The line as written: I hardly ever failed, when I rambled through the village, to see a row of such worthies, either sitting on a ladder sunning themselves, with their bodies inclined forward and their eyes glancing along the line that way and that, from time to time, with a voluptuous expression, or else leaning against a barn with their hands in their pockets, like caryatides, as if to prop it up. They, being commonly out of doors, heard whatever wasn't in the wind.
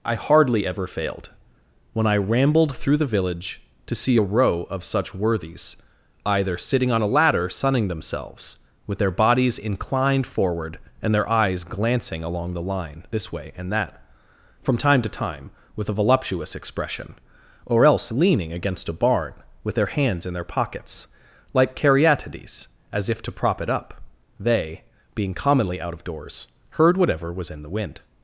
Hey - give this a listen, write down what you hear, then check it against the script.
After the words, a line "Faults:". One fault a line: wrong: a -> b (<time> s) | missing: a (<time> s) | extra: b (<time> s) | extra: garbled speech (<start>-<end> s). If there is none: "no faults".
I hardly ever failed, when I rambled through the village, to see a row of such worthies, either sitting on a ladder sunning themselves, with their bodies inclined forward and their eyes glancing along the line this way and that, from time to time, with a voluptuous expression, or else leaning against a barn with their hands in their pockets, like caryatides, as if to prop it up. They, being commonly out of doors, heard whatever was in the wind.
Faults:
wrong: that -> this (13.1 s)
wrong: wasn't -> was (27.3 s)